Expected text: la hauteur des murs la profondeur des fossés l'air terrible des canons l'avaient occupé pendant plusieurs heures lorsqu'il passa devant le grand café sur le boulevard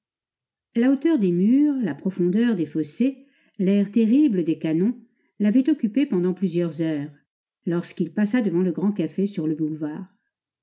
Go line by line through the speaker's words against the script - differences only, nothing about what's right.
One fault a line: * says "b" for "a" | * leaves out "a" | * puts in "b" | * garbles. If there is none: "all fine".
all fine